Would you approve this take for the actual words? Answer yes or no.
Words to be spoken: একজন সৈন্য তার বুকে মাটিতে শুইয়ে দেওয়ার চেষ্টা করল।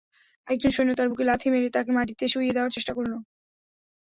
no